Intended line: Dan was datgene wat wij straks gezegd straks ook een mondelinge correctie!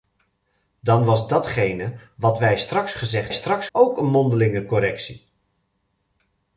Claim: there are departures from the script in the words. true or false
false